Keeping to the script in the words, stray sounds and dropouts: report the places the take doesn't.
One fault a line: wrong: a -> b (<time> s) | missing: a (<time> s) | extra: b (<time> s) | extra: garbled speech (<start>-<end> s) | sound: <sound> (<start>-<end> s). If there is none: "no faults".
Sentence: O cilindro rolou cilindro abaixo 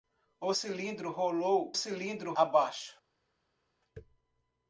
no faults